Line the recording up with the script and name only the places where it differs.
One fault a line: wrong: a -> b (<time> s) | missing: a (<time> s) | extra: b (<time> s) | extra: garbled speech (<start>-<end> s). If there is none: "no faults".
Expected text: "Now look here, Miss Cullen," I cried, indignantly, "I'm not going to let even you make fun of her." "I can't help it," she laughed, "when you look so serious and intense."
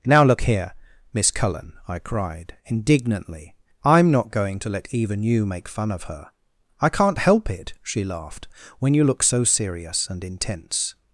no faults